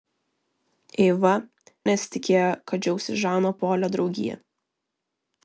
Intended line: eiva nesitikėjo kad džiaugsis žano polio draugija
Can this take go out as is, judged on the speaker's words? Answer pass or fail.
pass